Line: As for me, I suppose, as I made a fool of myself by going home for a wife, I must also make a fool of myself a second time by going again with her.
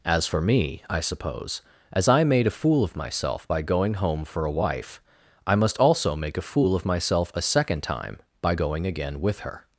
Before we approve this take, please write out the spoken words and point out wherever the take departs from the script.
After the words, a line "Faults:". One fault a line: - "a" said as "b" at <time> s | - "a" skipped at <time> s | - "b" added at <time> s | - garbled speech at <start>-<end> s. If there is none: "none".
As for me, I suppose, as I made a fool of myself by going home for a wife, I must also make a fool of myself a second time by going again with her.
Faults:
none